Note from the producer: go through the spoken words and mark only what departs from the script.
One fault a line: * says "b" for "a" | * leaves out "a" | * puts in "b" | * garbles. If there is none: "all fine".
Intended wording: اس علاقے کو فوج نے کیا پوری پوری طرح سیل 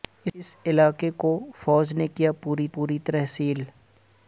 all fine